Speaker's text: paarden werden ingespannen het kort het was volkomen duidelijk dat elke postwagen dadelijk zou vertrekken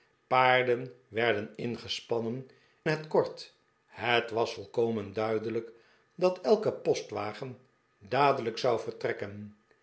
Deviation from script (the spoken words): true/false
false